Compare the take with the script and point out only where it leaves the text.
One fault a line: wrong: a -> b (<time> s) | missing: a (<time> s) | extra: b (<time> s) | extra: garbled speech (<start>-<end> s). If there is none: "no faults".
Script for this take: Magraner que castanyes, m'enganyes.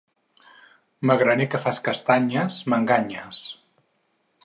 extra: fas (1.7 s)